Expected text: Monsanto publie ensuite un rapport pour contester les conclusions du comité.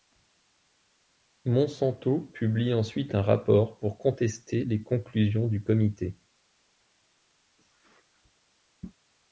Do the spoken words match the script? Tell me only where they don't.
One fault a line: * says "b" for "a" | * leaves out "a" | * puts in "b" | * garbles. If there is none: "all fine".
all fine